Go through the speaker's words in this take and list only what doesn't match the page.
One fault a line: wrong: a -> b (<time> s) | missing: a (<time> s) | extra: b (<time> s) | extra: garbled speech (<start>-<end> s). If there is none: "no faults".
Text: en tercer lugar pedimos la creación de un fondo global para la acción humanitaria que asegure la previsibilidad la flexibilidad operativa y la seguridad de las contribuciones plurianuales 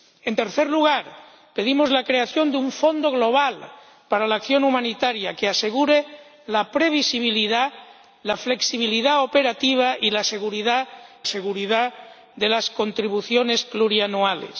extra: seguridad (11.3 s)